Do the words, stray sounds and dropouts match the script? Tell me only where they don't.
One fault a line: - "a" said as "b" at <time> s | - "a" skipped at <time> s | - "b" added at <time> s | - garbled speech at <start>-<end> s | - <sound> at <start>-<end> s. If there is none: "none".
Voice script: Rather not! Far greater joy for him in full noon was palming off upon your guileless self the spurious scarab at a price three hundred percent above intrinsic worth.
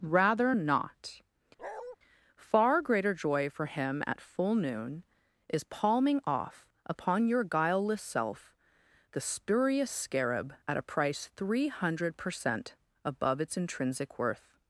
- bark at 1.6-2.0 s
- "in" said as "at" at 4.1 s
- "was" said as "is" at 5.5 s
- "its" added at 13.4 s